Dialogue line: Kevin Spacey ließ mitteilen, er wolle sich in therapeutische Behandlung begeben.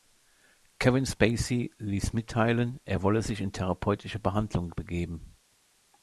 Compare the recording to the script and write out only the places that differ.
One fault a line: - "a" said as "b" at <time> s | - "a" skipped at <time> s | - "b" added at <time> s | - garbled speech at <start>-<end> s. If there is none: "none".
none